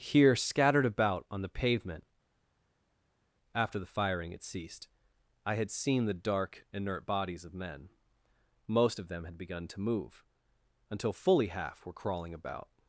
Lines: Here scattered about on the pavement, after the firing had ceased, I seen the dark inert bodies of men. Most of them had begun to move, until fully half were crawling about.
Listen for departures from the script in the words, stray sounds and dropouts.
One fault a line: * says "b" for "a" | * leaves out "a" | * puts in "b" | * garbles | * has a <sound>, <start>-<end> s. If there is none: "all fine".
* puts in "had"